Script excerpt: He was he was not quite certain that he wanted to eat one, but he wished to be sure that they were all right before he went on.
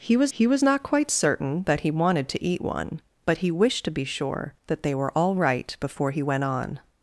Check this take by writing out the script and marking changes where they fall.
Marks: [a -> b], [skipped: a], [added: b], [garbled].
He was he was not quite certain that he wanted to eat one, but he wished to be sure that they were all right before he went on.